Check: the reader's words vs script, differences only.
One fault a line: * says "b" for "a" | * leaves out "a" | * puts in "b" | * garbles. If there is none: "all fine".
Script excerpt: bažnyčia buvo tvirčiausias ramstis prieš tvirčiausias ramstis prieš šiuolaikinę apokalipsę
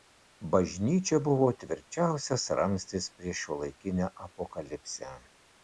* leaves out "tvirčiausias ramstis prieš"